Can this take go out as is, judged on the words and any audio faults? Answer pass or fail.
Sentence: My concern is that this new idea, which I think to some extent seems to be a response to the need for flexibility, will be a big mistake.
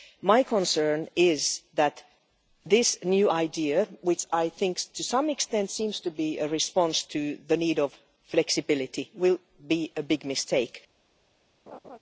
fail